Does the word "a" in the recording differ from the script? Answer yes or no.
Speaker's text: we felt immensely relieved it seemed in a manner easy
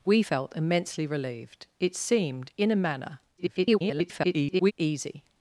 no